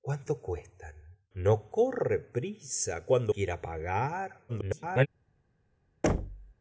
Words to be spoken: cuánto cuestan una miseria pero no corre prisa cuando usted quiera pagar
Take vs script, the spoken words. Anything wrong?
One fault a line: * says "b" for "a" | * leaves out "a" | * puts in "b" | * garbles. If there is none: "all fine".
* leaves out "una miseria pero"
* leaves out "usted"
* garbles